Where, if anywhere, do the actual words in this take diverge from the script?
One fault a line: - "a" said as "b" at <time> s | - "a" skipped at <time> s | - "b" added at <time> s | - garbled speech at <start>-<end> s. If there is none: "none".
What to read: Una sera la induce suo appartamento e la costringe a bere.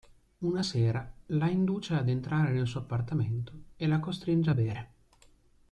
- "ad entrare nel" added at 1.9 s